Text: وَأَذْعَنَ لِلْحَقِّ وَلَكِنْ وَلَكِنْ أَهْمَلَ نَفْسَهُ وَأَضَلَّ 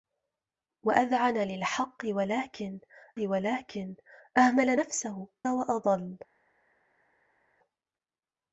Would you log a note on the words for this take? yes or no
no